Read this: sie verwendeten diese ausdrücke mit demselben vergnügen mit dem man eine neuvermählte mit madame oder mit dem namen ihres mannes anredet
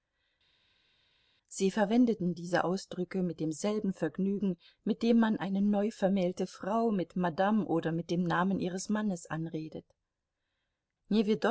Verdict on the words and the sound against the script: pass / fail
fail